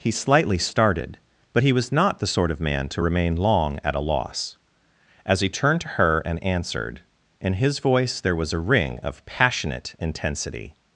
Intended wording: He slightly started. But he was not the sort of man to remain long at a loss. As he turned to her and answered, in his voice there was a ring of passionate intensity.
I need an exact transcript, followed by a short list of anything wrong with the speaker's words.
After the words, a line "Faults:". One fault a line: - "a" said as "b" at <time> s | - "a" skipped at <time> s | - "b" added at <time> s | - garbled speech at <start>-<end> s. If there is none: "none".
He slightly started. But he was not the sort of man to remain long at a loss. As he turned to her and answered, in his voice there was a ring of passionate intensity.
Faults:
none